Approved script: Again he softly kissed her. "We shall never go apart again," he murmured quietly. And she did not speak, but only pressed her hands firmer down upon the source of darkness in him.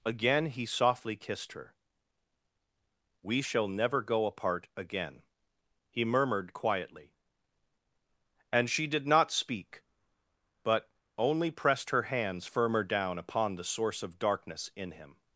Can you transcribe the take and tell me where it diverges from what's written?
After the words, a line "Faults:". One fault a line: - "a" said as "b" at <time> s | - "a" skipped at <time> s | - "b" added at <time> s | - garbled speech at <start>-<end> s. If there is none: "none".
Again he softly kissed her. "We shall never go apart again," he murmured quietly. And she did not speak, but only pressed her hands firmer down upon the source of darkness in him.
Faults:
none